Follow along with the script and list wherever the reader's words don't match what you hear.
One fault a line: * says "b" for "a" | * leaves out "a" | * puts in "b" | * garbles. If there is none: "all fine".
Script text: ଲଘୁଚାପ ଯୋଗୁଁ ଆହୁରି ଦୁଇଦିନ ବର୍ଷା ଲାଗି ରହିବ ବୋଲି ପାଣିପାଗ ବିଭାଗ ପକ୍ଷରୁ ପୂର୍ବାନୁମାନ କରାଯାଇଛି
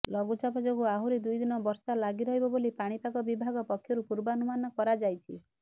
all fine